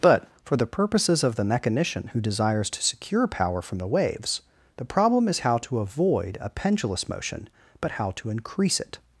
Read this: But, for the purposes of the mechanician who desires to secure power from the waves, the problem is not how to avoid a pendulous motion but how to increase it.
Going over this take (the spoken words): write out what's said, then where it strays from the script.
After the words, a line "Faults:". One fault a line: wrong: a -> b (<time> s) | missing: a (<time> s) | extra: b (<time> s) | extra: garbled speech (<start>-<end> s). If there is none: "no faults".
But, for the purposes of the mechanician who desires to secure power from the waves, the problem is how to avoid a pendulous motion but how to increase it.
Faults:
missing: not (5.4 s)